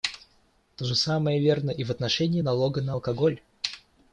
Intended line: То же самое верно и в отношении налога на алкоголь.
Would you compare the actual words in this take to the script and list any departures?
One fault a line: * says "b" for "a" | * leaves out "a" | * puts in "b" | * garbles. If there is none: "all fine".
all fine